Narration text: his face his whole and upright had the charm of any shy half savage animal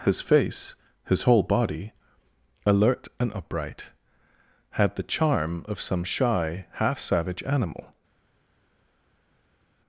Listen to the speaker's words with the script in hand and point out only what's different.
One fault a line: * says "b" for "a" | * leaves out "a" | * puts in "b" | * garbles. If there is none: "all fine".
* puts in "body alert"
* says "some" for "any"